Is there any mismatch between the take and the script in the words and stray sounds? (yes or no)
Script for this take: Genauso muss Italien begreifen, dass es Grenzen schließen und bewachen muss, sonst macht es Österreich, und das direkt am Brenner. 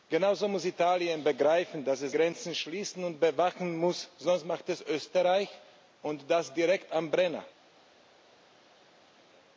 no